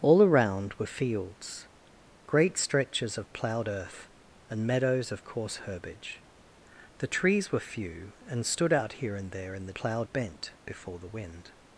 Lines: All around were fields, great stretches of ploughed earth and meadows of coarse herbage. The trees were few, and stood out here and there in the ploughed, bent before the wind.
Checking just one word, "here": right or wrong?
right